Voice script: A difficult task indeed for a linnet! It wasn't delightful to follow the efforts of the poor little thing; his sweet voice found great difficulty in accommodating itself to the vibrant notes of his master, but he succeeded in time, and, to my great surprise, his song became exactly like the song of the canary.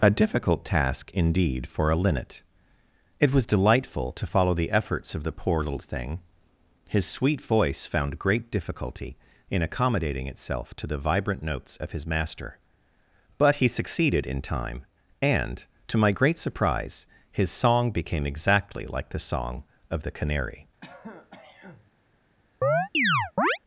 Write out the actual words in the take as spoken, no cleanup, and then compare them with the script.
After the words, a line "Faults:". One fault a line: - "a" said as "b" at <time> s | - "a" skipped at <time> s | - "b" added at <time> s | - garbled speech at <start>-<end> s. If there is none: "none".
A difficult task indeed for a linnet! It was delightful to follow the efforts of the poor little thing; his sweet voice found great difficulty in accommodating itself to the vibrant notes of his master, but he succeeded in time, and, to my great surprise, his song became exactly like the song of the canary.
Faults:
- "wasn't" said as "was" at 3.3 s